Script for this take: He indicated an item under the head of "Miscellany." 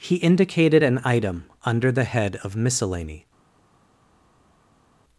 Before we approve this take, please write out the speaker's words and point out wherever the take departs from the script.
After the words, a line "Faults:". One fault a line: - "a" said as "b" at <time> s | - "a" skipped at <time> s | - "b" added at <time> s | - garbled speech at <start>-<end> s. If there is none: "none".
He indicated an item under the head of "Miscellany."
Faults:
none